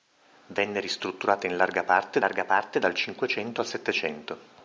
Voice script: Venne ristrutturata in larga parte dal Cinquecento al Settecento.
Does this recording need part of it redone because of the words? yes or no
yes